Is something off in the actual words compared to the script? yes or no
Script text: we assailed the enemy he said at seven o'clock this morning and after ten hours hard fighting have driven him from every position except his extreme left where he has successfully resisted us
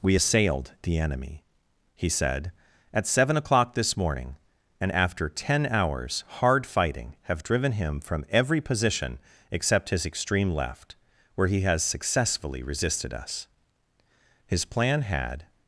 yes